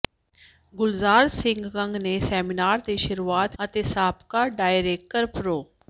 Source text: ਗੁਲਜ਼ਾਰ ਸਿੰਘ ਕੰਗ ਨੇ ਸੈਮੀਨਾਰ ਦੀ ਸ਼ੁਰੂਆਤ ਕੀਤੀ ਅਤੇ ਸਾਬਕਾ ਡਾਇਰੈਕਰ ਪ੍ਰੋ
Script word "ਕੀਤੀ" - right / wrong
wrong